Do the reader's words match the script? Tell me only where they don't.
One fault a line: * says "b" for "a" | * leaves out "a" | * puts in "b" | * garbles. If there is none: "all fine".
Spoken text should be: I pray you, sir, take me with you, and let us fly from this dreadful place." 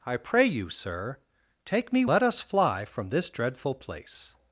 * leaves out "with you and"